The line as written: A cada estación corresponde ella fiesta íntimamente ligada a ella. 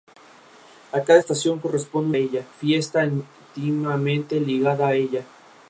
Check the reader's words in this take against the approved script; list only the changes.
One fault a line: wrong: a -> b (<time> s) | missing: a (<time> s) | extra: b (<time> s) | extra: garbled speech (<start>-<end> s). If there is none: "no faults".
no faults